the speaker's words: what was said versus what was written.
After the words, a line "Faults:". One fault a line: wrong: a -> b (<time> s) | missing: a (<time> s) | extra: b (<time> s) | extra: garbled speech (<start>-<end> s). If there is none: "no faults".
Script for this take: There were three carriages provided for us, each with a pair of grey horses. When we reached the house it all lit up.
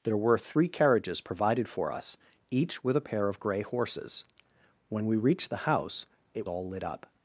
There were three carriages provided for us, each with a pair of grey horses. When we reached the house it all lit up.
Faults:
no faults